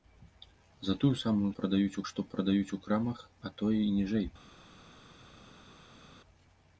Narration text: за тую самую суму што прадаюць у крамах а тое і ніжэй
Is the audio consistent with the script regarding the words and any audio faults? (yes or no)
no